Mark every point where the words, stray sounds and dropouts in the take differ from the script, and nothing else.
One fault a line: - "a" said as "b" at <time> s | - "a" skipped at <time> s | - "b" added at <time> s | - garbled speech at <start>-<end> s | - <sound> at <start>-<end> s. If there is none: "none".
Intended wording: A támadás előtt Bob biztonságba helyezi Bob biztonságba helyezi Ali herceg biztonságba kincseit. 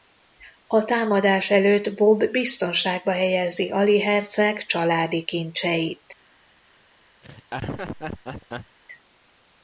- "Bob biztonságba helyezi" skipped at 3.7 s
- "biztonságba" said as "családi" at 4.7 s
- laugh at 7.2-8.8 s